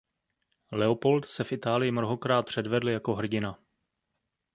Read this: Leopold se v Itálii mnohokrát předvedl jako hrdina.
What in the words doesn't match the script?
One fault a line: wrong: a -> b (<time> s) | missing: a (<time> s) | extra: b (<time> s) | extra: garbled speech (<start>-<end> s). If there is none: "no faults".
no faults